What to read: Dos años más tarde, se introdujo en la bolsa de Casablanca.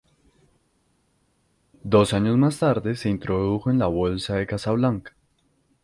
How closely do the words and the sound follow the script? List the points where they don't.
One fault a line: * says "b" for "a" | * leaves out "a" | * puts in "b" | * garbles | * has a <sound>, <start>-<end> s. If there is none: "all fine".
all fine